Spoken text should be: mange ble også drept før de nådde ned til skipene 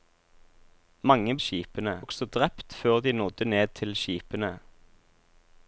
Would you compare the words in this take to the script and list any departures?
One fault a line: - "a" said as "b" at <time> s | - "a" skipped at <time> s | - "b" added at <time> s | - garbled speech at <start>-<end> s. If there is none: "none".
- "ble" said as "skipene" at 1.4 s